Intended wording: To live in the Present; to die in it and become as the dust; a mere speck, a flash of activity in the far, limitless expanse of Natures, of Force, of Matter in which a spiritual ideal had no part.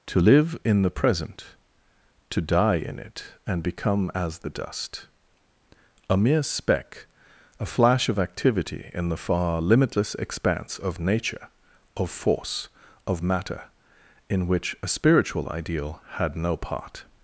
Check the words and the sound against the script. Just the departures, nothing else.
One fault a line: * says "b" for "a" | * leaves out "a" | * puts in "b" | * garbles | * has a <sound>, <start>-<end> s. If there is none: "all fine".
* says "Nature" for "Natures"